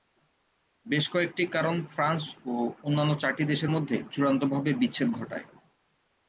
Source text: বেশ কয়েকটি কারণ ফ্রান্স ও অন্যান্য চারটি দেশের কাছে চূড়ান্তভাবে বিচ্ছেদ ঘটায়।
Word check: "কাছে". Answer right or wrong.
wrong